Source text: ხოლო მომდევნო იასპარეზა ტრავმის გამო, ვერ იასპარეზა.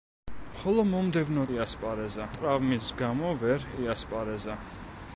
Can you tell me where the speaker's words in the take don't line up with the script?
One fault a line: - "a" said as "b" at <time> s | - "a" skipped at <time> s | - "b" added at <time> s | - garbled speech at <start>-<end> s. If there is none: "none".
none